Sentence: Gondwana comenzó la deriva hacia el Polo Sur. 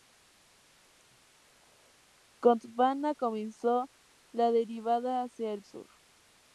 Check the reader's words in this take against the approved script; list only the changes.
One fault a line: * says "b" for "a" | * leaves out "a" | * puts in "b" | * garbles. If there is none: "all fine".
* leaves out "Polo"